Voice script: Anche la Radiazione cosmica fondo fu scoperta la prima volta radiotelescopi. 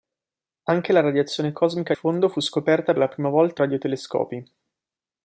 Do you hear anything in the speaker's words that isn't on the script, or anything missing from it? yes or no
no